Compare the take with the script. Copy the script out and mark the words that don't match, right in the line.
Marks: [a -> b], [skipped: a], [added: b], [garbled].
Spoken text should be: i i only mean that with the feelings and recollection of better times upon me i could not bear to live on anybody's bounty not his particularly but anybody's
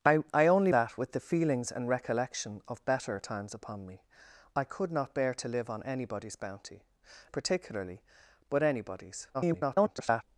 i i only [skipped: mean] that with the feelings and recollection of better times upon me i could not bear to live on anybody's bounty [skipped: not his] particularly but anybody's [garbled]